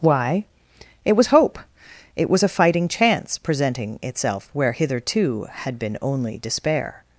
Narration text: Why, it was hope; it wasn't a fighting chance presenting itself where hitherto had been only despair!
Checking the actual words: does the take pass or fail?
fail